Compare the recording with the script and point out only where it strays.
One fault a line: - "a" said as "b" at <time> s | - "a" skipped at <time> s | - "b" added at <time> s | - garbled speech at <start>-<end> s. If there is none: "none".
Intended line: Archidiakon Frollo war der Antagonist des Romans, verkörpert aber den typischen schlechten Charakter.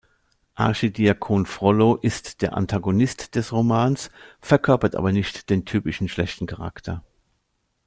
- "war" said as "ist" at 1.9 s
- "nicht" added at 5.1 s